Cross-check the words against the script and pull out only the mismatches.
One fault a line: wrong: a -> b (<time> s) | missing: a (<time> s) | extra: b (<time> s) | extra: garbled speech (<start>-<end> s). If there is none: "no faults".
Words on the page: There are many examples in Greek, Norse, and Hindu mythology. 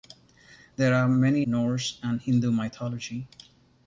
missing: examples in Greek (1.4 s)